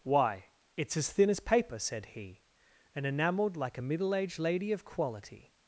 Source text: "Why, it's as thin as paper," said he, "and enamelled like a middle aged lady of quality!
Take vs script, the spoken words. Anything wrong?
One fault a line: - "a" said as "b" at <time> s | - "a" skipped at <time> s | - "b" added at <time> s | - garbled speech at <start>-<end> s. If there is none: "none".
none